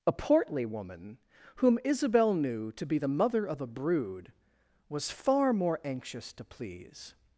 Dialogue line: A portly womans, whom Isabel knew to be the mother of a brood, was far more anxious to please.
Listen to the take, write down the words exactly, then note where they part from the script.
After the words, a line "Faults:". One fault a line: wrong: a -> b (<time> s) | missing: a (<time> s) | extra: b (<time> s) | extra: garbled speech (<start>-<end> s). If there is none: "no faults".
A portly woman, whom Isabel knew to be the mother of a brood, was far more anxious to please.
Faults:
wrong: womans -> woman (0.7 s)